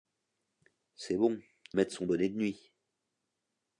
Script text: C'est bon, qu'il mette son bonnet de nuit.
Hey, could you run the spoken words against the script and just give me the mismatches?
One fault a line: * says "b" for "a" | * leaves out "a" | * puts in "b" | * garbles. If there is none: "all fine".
* leaves out "qu'il"